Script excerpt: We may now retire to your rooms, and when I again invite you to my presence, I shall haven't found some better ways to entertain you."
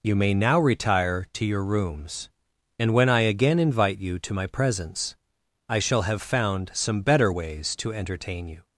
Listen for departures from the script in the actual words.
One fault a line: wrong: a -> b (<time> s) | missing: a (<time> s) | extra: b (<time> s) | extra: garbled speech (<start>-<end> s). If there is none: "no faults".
wrong: We -> You (0.0 s)
wrong: haven't -> have (6.0 s)